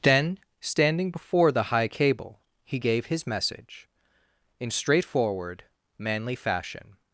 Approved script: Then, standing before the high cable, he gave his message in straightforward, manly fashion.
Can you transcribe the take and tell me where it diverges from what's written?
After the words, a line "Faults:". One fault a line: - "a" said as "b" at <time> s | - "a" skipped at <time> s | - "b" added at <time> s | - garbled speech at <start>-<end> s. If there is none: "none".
Then, standing before the high cable, he gave his message in straightforward, manly fashion.
Faults:
none